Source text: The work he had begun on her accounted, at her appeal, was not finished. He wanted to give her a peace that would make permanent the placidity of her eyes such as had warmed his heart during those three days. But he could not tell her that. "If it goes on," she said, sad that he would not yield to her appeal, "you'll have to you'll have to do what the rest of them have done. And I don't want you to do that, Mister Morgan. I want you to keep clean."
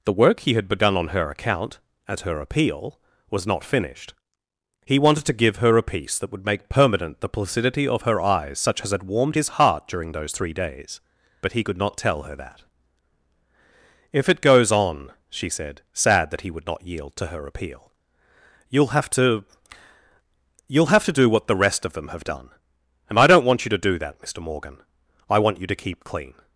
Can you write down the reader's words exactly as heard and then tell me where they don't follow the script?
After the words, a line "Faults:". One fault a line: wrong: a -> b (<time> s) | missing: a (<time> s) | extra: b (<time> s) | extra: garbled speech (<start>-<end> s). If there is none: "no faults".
The work he had begun on her account, at her appeal, was not finished. He wanted to give her a peace that would make permanent the placidity of her eyes such as had warmed his heart during those three days. But he could not tell her that. "If it goes on," she said, sad that he would not yield to her appeal, "you'll have to you'll have to do what the rest of them have done. And I don't want you to do that, Mister Morgan. I want you to keep clean."
Faults:
wrong: accounted -> account (1.3 s)